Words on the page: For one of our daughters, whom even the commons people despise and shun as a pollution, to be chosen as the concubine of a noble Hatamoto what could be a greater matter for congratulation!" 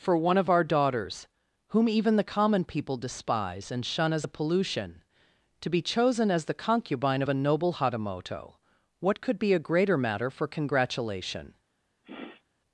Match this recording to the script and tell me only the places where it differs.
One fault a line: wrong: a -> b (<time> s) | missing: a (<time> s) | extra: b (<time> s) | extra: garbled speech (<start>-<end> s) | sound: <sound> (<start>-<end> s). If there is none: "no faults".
wrong: commons -> common (2.2 s)
sound: sniff (12.0-12.4 s)